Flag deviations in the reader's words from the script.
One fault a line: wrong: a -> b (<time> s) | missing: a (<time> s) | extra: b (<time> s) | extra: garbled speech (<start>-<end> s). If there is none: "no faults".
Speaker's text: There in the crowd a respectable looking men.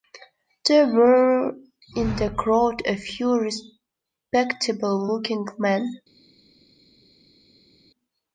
extra: were (0.9 s)
extra: few (3.0 s)